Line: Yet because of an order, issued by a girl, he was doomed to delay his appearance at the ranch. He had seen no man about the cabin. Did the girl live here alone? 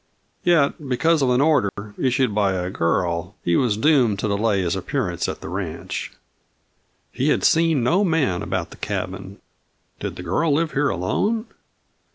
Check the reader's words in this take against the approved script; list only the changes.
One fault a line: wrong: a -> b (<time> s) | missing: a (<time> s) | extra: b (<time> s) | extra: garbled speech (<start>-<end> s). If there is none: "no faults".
no faults